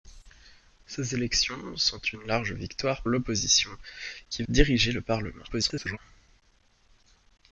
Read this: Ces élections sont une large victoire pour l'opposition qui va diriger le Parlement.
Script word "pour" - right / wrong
wrong